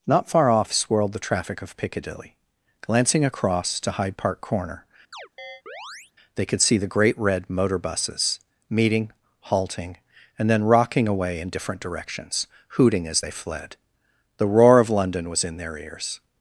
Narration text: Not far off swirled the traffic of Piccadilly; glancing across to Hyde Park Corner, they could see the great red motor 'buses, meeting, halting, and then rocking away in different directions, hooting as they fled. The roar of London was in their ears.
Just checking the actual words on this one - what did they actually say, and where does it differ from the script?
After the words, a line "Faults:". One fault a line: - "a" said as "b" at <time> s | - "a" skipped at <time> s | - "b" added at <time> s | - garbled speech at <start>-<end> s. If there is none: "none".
Not far off swirled the traffic of Piccadilly; glancing across to Hyde Park Corner, they could see the great red motor 'buses, meeting, halting, and then rocking away in different directions, hooting as they fled. The roar of London was in their ears.
Faults:
none